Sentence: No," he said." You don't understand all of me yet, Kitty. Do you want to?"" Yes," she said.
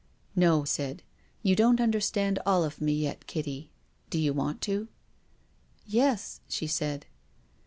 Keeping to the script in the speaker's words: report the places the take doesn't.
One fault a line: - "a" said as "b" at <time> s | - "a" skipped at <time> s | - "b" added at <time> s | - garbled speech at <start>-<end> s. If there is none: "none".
- "he" skipped at 0.6 s